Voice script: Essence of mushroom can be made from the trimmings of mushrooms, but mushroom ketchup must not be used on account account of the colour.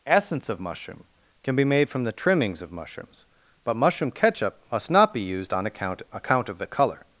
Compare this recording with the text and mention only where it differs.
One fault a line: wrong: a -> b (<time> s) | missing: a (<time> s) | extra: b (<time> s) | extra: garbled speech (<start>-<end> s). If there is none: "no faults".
no faults